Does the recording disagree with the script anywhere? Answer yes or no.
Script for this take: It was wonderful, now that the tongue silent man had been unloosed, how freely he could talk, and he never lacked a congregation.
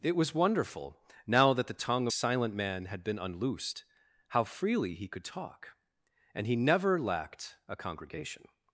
no